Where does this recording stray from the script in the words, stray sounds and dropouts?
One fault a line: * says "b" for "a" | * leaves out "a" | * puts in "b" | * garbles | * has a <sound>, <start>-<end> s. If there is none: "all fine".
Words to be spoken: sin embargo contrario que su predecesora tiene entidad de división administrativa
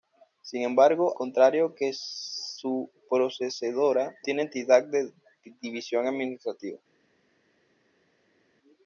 all fine